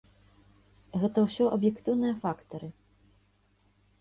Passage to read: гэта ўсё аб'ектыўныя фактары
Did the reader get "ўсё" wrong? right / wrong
right